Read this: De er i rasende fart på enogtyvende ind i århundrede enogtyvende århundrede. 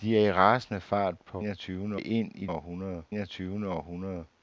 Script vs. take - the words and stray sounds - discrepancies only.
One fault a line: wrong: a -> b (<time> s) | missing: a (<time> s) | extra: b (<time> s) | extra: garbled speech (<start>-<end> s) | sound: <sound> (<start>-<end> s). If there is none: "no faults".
no faults